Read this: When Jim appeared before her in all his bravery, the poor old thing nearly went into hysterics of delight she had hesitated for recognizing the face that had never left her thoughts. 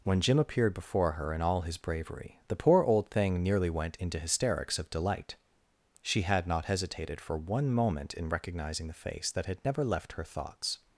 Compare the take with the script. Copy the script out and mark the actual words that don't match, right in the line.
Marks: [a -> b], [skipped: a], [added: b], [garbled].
When Jim appeared before her in all his bravery, the poor old thing nearly went into hysterics of delight she had [added: not] hesitated for [added: one moment in] recognizing the face that had never left her thoughts.